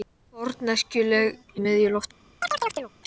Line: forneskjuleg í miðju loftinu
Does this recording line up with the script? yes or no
yes